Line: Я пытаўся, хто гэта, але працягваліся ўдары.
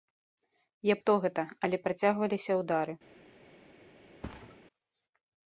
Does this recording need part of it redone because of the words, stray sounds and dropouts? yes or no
yes